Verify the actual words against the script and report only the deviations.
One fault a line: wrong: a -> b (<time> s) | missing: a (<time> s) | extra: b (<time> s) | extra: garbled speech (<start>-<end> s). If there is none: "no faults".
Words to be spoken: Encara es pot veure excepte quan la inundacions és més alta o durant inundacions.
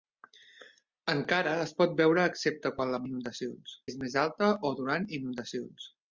no faults